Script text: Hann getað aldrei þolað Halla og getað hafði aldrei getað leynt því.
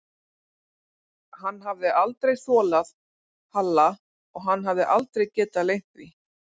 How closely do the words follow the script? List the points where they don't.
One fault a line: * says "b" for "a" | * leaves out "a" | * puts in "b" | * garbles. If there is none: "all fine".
* says "hafði" for "getað"
* says "hann" for "getað"